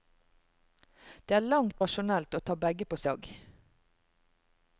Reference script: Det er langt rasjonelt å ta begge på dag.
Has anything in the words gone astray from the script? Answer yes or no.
no